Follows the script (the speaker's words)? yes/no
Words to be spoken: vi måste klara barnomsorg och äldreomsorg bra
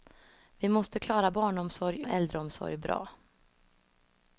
yes